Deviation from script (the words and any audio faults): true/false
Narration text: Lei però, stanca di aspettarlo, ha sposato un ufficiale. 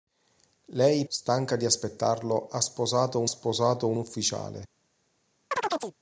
true